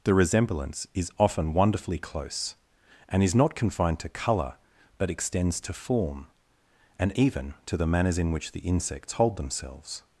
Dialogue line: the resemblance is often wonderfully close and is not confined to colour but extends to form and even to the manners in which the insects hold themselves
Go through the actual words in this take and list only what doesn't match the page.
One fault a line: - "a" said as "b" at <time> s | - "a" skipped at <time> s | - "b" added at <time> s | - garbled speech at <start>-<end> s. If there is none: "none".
none